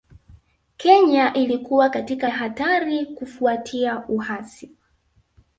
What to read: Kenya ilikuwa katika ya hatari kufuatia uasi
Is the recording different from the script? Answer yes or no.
no